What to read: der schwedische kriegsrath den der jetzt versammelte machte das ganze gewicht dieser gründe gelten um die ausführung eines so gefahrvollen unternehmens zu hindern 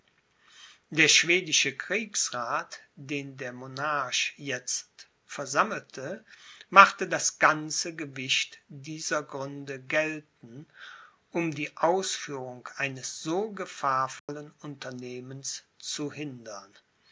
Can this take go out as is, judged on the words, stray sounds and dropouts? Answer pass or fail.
fail